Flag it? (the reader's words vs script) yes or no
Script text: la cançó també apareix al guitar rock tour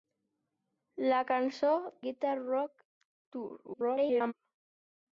yes